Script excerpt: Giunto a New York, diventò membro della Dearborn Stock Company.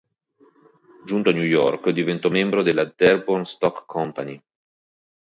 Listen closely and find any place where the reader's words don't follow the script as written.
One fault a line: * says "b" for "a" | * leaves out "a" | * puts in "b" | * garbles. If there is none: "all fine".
all fine